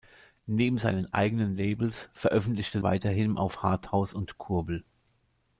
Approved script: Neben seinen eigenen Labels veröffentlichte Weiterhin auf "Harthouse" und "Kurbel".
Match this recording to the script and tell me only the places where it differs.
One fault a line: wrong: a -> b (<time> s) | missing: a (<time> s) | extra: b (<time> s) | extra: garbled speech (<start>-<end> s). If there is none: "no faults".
no faults